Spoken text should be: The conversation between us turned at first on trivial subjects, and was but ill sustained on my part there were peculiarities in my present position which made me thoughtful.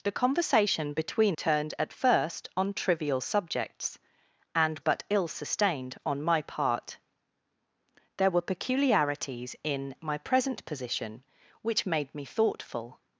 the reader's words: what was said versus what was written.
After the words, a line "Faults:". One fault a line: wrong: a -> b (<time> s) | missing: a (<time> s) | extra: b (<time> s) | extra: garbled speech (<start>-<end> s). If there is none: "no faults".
The conversation between turned at first on trivial subjects, and but ill sustained on my part there were peculiarities in my present position which made me thoughtful.
Faults:
missing: us (1.4 s)
missing: was (4.8 s)